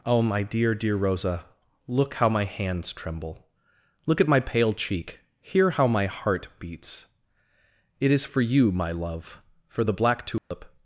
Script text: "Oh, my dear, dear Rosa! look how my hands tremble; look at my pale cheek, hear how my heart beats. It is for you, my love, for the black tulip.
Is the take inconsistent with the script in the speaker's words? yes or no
no